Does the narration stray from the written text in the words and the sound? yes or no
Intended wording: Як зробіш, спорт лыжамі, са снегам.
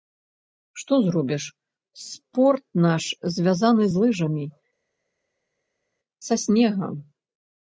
yes